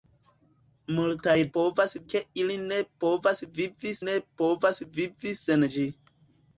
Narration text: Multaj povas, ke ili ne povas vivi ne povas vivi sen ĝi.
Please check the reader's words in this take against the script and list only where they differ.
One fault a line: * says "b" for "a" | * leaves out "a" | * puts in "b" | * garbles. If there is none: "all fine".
all fine